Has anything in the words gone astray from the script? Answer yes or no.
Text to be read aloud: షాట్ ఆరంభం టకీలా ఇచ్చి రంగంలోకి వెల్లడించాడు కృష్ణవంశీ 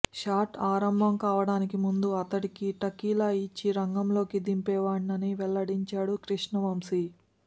yes